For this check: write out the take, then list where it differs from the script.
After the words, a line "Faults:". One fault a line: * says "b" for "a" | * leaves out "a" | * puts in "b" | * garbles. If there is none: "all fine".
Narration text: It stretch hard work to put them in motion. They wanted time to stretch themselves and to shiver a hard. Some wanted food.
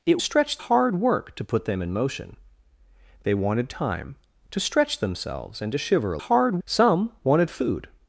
It stretch hard work to put them in motion. They wanted time to stretch themselves and to shiver a hard. Some wanted food.
Faults:
all fine